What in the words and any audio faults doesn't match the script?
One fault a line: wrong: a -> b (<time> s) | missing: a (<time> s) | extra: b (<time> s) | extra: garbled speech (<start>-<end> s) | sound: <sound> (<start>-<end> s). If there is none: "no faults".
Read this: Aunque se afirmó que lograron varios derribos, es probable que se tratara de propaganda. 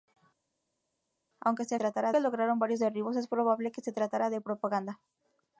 wrong: afirmó -> tratara (1.7 s)